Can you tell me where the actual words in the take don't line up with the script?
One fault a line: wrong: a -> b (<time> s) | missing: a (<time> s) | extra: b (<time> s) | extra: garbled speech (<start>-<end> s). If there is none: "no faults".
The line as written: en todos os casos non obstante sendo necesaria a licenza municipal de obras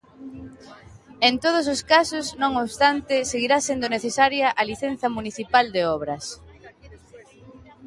extra: seguirá (3.3 s)